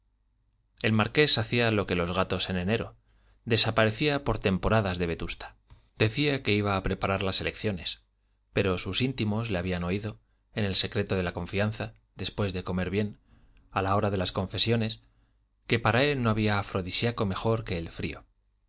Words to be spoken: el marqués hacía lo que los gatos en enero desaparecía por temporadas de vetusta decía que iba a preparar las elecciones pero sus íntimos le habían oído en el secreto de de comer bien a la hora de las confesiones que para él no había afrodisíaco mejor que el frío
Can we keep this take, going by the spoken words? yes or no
no